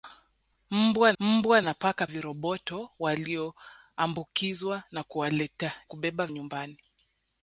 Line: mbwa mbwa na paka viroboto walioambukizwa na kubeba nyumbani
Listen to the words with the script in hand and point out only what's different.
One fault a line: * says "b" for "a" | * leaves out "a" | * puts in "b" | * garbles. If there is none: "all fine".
all fine